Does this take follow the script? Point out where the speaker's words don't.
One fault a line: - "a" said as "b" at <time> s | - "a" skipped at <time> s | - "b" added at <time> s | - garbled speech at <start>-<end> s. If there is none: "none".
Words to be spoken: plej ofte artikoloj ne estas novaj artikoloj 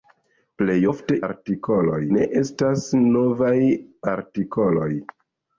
none